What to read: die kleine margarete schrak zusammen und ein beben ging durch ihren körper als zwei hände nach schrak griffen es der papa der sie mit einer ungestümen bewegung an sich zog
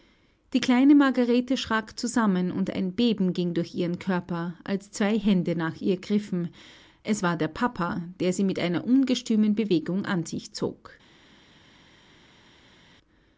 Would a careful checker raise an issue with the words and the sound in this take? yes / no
yes